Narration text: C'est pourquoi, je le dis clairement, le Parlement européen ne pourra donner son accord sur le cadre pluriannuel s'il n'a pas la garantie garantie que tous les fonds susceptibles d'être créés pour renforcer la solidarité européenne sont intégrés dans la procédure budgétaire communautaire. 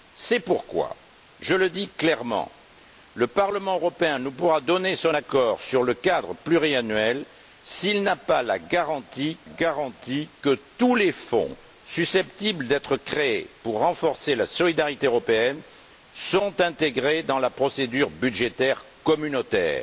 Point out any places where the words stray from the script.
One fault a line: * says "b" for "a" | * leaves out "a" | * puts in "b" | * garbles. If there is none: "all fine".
all fine